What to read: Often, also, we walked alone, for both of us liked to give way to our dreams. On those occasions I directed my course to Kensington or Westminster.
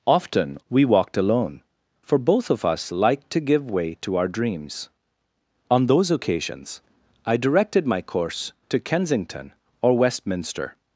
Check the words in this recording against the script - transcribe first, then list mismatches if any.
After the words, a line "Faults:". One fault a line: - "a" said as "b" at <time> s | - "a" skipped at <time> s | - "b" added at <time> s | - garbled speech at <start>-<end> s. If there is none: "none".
Often, we walked alone, for both of us liked to give way to our dreams. On those occasions I directed my course to Kensington or Westminster.
Faults:
- "also" skipped at 0.6 s